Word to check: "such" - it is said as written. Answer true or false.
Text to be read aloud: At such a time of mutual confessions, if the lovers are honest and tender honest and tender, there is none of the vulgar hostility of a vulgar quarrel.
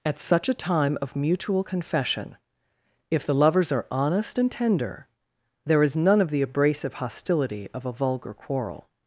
true